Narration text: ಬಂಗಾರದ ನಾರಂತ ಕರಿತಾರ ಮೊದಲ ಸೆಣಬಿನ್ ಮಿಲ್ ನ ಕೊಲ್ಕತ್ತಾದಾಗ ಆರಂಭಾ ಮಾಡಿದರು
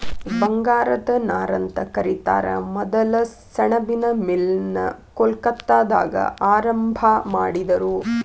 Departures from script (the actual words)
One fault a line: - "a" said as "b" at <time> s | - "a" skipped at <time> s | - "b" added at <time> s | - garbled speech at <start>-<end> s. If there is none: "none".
none